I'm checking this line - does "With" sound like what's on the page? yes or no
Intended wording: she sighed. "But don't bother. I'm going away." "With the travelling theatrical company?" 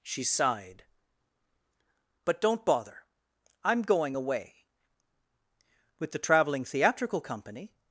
yes